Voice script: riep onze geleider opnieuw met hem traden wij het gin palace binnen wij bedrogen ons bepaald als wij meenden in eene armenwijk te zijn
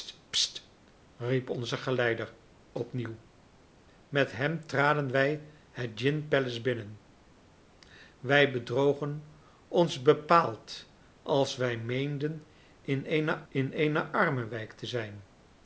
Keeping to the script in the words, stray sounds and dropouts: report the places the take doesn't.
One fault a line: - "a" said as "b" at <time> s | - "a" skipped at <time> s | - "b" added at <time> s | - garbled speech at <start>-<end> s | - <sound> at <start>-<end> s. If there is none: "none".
- "in eene" added at 13.5 s